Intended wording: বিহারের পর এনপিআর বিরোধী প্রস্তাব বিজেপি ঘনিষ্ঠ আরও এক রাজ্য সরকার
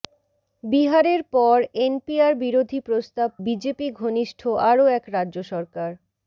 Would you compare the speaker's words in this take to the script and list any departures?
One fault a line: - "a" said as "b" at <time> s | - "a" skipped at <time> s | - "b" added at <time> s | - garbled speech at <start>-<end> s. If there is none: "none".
none